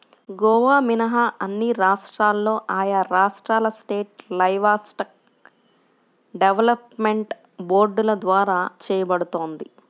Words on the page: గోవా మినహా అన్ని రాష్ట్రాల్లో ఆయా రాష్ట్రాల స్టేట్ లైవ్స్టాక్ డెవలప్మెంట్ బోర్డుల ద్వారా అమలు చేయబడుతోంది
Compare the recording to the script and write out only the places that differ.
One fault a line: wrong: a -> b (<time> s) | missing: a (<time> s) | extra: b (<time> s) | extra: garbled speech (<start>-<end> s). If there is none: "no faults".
missing: అమలు (8.6 s)